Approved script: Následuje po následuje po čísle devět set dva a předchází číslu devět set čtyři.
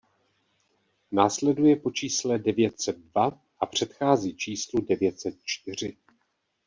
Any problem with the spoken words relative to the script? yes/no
yes